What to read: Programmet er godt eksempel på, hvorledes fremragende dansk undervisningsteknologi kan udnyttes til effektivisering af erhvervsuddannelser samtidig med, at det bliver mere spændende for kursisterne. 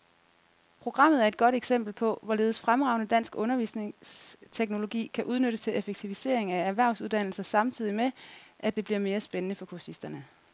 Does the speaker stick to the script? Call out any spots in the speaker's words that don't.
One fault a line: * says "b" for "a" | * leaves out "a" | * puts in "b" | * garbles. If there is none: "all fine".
* puts in "et"